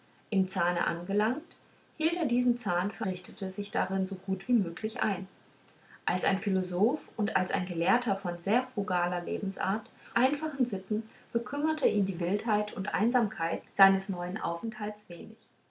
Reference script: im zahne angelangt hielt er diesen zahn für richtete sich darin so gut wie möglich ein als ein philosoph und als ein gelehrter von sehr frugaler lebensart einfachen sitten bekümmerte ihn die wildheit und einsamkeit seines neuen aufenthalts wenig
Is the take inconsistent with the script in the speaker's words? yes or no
no